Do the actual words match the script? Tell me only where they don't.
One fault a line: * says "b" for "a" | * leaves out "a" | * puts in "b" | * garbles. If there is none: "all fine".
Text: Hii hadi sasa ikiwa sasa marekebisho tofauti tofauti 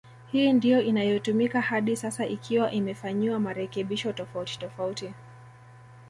* puts in "ndio inayotumika"
* says "imefanyiwa" for "sasa"